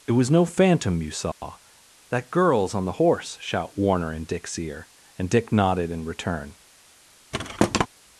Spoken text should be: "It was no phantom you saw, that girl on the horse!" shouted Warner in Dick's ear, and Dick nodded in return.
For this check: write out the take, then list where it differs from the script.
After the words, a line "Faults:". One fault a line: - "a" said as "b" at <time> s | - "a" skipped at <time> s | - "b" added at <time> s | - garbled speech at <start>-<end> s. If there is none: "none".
"It was no phantom you saw, that girls on the horse!" shout Warner in Dick's ear, and Dick nodded in return.
Faults:
- "girl" said as "girls" at 2.3 s
- "shouted" said as "shout" at 3.4 s